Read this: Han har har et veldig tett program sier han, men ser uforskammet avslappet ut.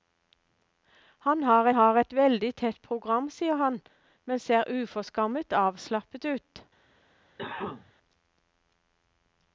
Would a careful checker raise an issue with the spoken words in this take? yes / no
no